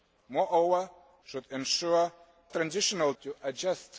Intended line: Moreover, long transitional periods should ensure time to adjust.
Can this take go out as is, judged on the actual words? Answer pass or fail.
fail